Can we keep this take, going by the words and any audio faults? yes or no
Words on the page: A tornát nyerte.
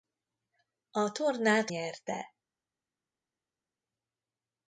yes